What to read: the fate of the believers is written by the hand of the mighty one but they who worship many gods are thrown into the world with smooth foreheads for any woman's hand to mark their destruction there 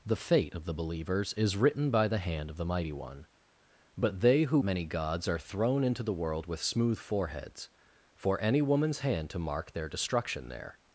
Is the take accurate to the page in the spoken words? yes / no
no